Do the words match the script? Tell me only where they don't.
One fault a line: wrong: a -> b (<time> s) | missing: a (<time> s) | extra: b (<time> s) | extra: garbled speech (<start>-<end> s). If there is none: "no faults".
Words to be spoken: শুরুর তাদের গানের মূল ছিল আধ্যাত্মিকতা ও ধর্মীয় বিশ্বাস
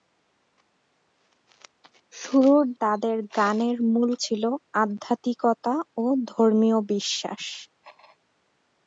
no faults